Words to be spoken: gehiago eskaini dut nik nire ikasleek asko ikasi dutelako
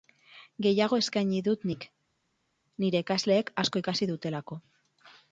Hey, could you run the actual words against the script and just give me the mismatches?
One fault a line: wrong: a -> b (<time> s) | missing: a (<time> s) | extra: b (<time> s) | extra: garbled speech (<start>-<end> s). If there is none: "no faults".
no faults